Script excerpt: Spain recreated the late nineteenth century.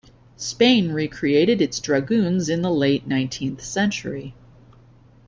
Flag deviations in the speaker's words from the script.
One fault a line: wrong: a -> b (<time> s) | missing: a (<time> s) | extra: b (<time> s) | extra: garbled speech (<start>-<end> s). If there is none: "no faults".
extra: its dragoons in (1.6 s)